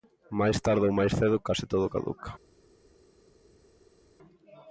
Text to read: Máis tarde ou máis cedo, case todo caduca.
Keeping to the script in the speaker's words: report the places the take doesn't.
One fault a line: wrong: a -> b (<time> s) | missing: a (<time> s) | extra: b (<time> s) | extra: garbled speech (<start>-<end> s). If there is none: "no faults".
no faults